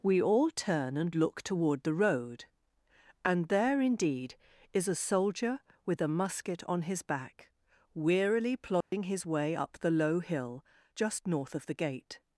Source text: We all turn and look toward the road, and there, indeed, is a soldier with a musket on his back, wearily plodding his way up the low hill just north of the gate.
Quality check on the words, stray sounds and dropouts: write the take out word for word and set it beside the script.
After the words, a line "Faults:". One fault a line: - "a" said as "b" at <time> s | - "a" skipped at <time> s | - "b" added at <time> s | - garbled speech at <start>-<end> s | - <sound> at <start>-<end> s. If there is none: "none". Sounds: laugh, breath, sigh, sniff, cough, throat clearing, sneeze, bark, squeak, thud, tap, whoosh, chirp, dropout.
We all turn and look toward the road, and there, indeed, is a soldier with a musket on his back, wearily plodding his way up the low hill just north of the gate.
Faults:
- dropout at 8.8-8.9 s